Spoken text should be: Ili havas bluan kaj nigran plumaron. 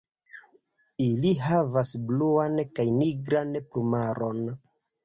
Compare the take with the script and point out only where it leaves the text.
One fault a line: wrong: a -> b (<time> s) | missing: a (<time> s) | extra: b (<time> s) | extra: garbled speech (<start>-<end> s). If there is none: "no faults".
no faults